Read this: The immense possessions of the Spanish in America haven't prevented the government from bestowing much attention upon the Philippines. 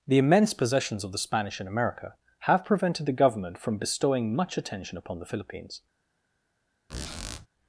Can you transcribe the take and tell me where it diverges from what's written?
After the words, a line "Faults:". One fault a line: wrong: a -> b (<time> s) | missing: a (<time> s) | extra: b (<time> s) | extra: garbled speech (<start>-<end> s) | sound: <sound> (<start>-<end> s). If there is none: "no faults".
The immense possessions of the Spanish in America have prevented the government from bestowing much attention upon the Philippines.
Faults:
wrong: haven't -> have (2.4 s)
sound: squeak (6.9-7.5 s)